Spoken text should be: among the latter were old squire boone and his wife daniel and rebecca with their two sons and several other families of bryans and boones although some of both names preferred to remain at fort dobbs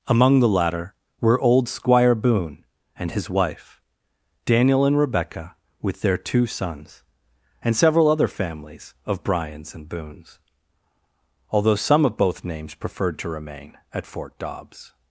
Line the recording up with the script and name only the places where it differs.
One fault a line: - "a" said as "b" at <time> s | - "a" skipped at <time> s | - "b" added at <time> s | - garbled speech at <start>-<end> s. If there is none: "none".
none